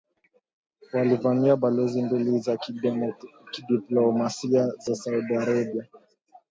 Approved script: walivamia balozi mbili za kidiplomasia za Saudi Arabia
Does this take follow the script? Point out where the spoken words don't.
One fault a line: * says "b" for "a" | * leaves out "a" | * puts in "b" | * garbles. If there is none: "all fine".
all fine